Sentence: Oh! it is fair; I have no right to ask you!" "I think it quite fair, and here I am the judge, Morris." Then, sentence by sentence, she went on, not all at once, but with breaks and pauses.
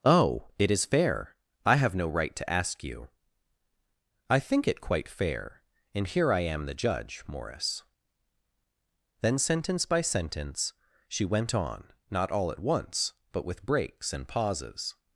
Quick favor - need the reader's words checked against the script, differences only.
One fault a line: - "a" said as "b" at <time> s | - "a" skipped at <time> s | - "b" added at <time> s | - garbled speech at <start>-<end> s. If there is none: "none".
none